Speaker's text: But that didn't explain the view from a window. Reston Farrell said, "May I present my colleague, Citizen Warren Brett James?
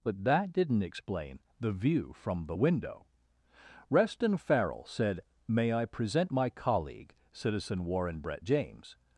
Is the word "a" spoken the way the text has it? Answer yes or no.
no